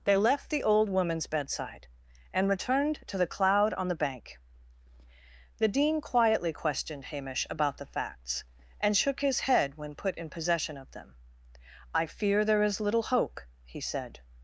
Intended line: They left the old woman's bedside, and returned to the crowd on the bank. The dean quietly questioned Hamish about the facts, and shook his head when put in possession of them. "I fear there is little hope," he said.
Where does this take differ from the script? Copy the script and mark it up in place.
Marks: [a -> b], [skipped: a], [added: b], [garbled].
They left the old woman's bedside, and returned to the [crowd -> cloud] on the bank. The dean quietly questioned Hamish about the facts, and shook his head when put in possession of them. "I fear there is little hope," he said.